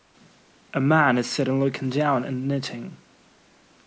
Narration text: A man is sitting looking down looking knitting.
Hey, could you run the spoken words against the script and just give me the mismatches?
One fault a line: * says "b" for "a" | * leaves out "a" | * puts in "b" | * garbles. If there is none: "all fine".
* says "and" for "looking"